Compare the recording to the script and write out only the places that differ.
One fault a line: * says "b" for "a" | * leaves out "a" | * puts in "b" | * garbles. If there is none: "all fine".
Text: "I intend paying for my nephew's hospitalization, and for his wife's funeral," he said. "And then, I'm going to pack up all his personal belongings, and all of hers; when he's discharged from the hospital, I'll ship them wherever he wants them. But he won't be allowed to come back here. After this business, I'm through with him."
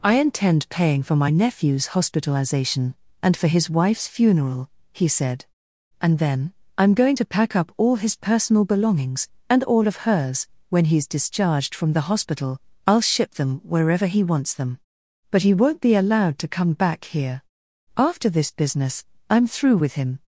all fine